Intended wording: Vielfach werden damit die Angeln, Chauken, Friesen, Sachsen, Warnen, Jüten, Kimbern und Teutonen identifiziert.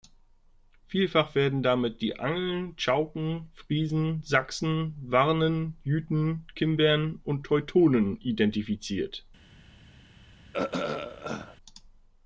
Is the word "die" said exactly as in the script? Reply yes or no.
yes